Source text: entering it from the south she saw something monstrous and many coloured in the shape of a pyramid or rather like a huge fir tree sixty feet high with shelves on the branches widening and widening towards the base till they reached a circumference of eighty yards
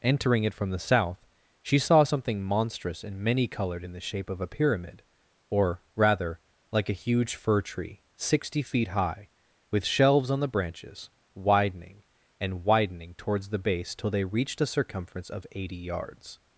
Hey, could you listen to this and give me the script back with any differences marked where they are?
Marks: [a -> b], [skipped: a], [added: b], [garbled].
entering it from the south she saw something monstrous and many coloured in the shape of a pyramid or rather like a huge fir tree sixty feet high with shelves on the branches widening and widening towards the base till they reached a circumference of eighty yards